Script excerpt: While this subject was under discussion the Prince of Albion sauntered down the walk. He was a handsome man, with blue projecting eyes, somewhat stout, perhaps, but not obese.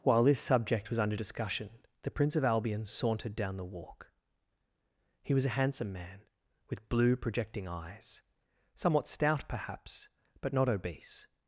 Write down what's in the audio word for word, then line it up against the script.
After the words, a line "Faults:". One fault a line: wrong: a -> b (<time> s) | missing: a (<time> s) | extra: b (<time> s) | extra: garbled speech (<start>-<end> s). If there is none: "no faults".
While this subject was under discussion the Prince of Albion sauntered down the walk. He was a handsome man, with blue projecting eyes, somewhat stout, perhaps, but not obese.
Faults:
no faults